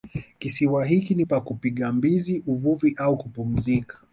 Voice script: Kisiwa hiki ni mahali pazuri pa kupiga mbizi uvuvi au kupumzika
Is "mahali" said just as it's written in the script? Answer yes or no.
no